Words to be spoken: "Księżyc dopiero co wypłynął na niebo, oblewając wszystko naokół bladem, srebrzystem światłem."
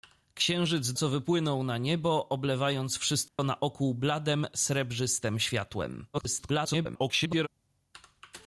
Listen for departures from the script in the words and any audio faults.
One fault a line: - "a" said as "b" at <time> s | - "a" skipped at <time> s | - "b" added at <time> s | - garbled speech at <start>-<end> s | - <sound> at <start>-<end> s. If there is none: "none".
- "dopiero" skipped at 0.9 s
- dropout at 3.3-3.4 s
- garbled speech at 6.1-7.5 s